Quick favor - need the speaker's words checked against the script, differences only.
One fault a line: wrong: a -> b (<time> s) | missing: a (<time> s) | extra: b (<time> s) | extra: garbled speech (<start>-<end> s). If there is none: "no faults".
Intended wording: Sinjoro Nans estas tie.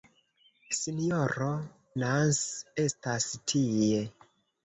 no faults